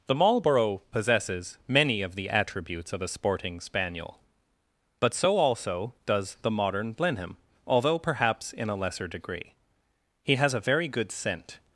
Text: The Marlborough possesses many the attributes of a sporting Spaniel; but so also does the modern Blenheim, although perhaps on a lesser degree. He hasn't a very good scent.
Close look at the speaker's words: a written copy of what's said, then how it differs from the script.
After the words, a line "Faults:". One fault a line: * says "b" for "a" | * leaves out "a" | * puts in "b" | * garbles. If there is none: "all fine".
The Marlborough possesses many of the attributes of a sporting Spaniel; but so also does the modern Blenheim, although perhaps in a lesser degree. He has a very good scent.
Faults:
* puts in "of"
* says "in" for "on"
* says "has" for "hasn't"